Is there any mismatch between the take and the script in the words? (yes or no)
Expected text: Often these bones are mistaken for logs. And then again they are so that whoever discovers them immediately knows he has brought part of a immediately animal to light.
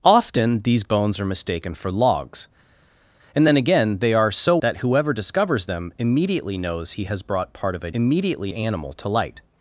no